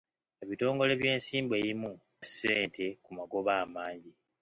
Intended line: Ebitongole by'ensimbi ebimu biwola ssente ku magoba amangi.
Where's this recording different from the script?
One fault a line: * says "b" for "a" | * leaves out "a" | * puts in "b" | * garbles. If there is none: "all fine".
* leaves out "biwola"